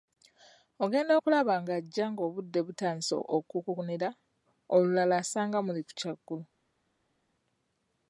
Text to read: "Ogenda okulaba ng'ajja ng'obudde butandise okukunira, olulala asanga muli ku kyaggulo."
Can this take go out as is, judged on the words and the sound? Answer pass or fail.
pass